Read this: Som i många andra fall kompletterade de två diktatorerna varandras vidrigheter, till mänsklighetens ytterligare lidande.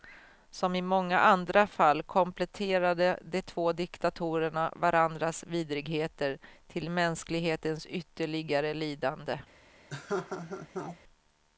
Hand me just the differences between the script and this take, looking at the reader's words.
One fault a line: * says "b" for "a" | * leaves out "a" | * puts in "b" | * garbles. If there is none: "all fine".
all fine